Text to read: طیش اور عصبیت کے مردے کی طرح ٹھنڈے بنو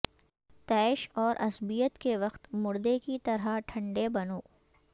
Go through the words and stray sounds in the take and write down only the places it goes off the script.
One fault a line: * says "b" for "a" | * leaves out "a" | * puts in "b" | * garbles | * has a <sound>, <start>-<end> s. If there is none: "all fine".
* puts in "وقت"